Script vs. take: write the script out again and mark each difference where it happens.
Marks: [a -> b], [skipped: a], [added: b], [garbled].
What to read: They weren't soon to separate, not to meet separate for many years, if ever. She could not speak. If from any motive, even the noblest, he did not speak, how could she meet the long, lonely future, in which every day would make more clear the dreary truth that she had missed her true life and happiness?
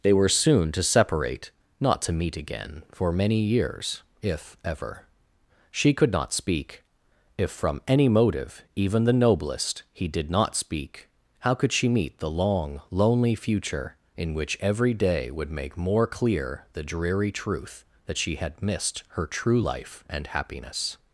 They [weren't -> were] soon to separate, not to meet [separate -> again] for many years, if ever. She could not speak. If from any motive, even the noblest, he did not speak, how could she meet the long, lonely future, in which every day would make more clear the dreary truth that she had missed her true life and happiness?